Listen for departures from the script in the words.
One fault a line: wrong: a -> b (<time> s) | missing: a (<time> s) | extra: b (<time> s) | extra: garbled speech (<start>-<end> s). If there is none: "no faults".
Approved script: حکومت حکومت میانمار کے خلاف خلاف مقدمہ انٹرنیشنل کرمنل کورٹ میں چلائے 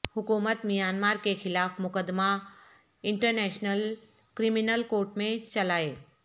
missing: حکومت (0.7 s)
missing: خلاف (1.8 s)